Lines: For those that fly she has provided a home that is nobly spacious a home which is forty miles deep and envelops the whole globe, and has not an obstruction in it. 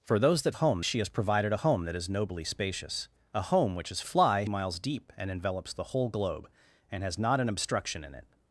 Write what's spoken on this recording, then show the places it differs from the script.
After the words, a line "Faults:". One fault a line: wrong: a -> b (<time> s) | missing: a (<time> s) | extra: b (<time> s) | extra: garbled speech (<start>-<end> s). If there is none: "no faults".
For those that home she has provided a home that is nobly spacious a home which is fly miles deep and envelops the whole globe, and has not an obstruction in it.
Faults:
wrong: fly -> home (0.5 s)
wrong: forty -> fly (4.0 s)